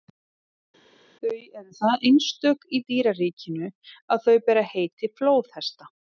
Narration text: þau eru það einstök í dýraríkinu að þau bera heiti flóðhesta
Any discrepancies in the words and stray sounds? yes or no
no